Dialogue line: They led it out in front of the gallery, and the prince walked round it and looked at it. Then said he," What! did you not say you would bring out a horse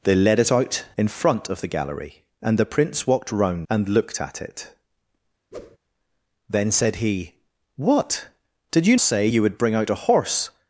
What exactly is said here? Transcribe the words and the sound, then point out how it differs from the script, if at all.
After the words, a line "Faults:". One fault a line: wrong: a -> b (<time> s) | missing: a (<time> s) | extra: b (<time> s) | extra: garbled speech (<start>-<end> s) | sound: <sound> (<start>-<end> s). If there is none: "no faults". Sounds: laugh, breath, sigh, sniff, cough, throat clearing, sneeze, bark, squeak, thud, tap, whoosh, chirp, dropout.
They led it out in front of the gallery, and the prince walked round and looked at it. Then said he," What! did you say you would bring out a horse
Faults:
missing: it (3.7 s)
sound: whoosh (5.5-5.8 s)
missing: not (9.0 s)